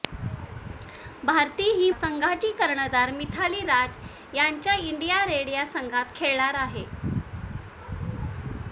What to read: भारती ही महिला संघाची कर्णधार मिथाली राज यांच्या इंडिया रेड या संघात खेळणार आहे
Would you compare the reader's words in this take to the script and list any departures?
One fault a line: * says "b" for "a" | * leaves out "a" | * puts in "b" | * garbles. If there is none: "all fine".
* leaves out "महिला"